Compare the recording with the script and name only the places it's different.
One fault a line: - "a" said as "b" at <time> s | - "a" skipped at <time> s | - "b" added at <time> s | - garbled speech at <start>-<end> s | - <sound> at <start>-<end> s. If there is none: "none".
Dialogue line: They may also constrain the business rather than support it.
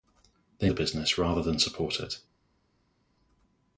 - "may also constrain" skipped at 0.7 s